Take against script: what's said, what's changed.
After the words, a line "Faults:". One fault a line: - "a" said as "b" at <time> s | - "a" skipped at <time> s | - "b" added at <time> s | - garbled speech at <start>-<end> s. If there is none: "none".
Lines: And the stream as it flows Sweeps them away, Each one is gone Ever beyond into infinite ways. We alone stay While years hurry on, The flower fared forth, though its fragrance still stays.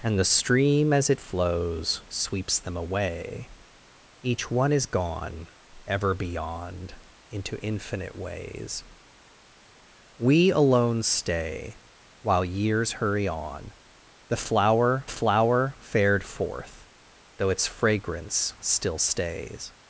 And the stream as it flows Sweeps them away, Each one is gone Ever beyond into infinite ways. We alone stay While years hurry on, The flower flower fared forth, though its fragrance still stays.
Faults:
- "flower" added at 15.1 s